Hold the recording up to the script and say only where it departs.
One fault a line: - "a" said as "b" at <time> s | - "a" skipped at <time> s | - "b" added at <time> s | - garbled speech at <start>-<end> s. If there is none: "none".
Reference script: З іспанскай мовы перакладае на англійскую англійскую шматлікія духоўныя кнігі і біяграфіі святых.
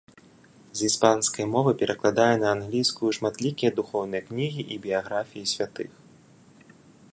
- "англійскую" skipped at 3.1 s